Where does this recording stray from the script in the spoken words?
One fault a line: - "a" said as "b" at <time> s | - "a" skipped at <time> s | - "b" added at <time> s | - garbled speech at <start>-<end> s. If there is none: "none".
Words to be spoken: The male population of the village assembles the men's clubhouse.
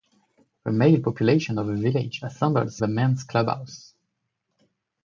none